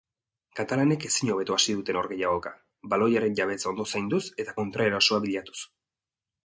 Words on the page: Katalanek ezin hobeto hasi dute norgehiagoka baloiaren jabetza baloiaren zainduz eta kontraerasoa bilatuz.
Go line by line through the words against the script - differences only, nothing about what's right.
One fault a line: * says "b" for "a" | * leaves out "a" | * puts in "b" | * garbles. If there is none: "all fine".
* says "ondo" for "baloiaren"